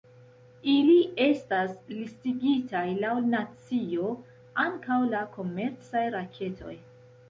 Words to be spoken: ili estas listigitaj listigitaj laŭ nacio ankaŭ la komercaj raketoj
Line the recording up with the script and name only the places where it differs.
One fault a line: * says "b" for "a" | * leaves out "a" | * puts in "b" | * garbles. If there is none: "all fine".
* leaves out "listigitaj"